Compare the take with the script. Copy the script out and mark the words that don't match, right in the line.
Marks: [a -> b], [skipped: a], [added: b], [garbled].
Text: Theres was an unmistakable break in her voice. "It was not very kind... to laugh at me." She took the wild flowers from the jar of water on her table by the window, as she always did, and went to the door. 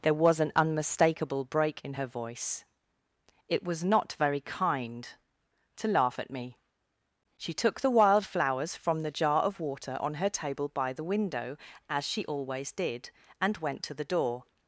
[Theres -> There] was an unmistakable break in her voice. "It was not very kind... to laugh at me." She took the wild flowers from the jar of water on her table by the window, as she always did, and went to the door.